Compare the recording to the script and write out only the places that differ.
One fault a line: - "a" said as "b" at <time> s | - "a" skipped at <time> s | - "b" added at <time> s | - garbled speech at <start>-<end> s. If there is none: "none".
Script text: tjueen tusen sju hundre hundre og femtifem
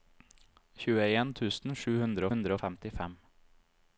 none